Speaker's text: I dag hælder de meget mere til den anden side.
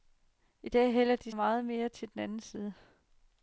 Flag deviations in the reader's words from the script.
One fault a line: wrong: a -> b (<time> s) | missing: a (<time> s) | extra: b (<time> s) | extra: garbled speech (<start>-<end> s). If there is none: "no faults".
no faults